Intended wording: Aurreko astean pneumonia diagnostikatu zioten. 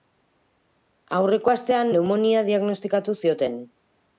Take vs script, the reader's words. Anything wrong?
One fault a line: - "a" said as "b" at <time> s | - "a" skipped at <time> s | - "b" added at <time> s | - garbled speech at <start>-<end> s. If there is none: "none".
none